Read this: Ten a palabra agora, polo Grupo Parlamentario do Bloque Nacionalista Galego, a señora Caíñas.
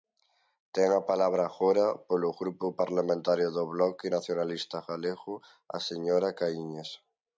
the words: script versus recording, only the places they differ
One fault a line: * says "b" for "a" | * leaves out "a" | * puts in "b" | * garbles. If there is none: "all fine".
all fine